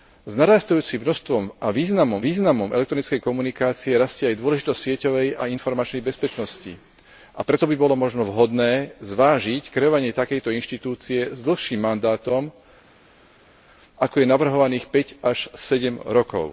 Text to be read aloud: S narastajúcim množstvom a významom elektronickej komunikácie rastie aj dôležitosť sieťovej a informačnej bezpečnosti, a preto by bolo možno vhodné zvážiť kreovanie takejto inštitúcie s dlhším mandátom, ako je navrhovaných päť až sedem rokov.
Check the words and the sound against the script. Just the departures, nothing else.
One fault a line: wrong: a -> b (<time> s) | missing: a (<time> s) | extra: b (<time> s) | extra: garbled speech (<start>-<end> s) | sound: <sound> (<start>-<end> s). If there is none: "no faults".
extra: významom (2.2 s)